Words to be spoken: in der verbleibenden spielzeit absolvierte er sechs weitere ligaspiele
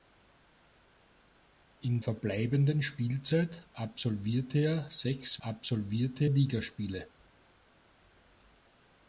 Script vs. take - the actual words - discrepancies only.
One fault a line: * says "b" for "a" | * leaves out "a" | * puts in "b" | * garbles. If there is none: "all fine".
* leaves out "der"
* says "absolvierte" for "weitere"